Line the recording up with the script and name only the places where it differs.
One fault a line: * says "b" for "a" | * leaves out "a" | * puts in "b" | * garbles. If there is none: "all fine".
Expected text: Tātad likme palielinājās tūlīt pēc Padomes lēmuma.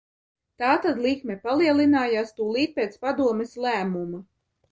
all fine